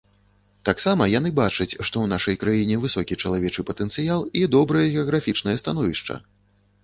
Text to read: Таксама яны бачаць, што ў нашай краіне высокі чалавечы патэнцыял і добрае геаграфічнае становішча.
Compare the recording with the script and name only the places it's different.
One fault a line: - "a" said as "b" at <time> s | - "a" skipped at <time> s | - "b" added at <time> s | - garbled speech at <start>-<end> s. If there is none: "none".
none